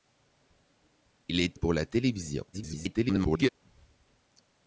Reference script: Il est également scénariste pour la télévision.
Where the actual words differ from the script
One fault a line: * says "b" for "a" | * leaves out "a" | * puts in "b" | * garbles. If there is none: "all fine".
* leaves out "également scénariste"
* garbles